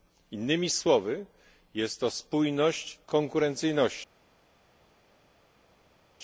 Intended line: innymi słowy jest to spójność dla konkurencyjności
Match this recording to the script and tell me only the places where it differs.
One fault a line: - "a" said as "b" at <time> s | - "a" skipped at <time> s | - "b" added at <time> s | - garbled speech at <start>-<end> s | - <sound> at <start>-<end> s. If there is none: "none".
- "dla" skipped at 3.0 s